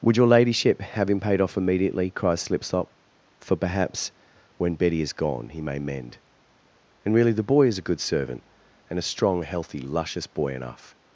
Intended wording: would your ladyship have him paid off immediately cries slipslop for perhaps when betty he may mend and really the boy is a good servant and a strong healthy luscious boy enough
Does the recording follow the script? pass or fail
fail